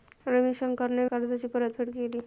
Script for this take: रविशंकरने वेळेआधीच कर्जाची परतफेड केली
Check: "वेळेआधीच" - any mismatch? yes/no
yes